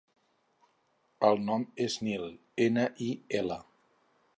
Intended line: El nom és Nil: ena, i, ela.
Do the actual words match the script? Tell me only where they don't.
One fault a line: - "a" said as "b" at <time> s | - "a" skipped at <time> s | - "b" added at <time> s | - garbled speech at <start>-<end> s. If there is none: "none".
none